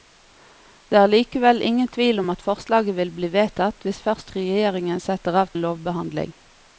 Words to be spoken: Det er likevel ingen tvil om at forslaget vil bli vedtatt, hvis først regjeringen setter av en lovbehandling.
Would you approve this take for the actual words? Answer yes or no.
yes